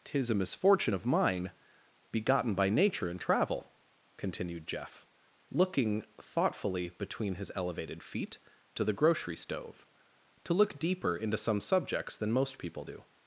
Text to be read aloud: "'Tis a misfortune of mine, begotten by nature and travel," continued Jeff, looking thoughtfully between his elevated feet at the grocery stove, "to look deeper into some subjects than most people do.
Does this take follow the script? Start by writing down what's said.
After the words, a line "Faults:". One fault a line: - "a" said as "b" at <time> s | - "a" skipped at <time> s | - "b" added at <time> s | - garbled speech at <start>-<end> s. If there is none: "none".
"'Tis a misfortune of mine, begotten by nature and travel," continued Jeff, looking thoughtfully between his elevated feet to the grocery stove, "to look deeper into some subjects than most people do.
Faults:
- "at" said as "to" at 8.7 s